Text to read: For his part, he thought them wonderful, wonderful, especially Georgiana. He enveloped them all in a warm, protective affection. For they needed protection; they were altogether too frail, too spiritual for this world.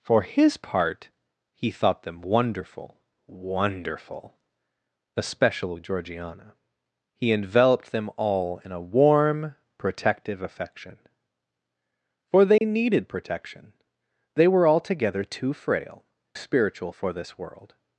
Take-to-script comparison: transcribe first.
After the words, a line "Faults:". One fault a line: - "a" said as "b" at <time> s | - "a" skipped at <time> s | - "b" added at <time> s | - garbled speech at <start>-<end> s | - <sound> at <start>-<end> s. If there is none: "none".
For his part, he thought them wonderful, wonderful, especially Georgiana. He enveloped them all in a warm, protective affection. For they needed protection; they were altogether too frail, spiritual for this world.
Faults:
- dropout at 12.6-12.6 s
- "too" skipped at 16.0 s